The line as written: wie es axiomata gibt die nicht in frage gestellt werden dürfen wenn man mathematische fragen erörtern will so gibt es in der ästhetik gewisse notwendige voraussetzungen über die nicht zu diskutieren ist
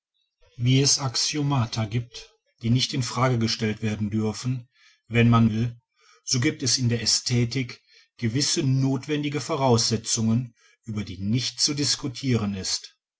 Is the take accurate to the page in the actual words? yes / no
no